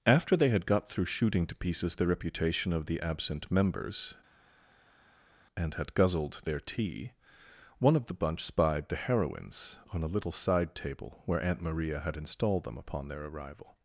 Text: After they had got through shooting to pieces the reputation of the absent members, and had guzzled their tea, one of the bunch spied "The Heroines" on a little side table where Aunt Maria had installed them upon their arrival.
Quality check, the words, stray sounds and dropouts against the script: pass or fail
pass